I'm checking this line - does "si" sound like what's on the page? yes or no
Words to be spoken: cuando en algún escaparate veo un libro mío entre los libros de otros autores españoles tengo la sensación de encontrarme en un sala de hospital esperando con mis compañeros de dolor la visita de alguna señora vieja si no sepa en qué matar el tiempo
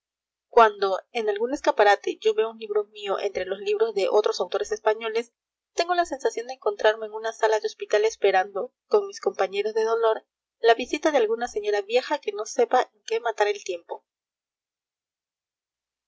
no